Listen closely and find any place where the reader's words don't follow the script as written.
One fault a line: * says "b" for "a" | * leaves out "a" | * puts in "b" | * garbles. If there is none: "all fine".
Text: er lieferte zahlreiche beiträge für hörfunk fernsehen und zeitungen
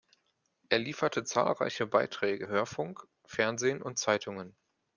* leaves out "für"